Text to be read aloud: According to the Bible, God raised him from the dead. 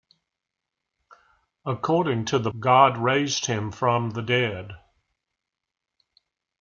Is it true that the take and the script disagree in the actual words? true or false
true